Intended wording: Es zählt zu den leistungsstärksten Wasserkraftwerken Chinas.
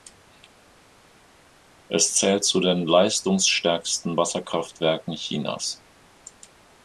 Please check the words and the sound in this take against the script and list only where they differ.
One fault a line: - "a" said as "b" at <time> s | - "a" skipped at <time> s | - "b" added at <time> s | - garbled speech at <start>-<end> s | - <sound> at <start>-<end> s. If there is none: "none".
none